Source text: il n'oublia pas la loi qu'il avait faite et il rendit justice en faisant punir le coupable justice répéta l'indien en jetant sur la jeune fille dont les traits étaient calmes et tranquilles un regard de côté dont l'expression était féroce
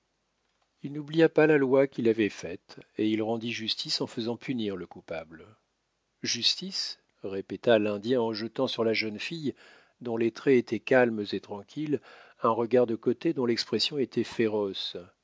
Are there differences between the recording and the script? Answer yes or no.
no